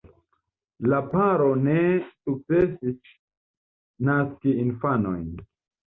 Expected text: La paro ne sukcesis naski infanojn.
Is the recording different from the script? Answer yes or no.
no